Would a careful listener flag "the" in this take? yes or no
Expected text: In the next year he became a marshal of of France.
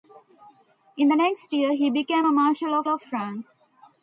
no